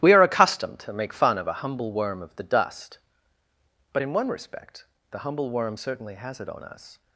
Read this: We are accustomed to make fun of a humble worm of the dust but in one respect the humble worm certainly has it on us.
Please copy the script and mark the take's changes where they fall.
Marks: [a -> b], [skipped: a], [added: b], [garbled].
We are accustomed to make fun of a humble worm of the dust but in one respect the humble worm certainly has it on us.